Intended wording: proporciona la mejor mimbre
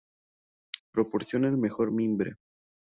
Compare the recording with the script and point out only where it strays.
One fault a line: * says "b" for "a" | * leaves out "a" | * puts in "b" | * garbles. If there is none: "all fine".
* says "el" for "la"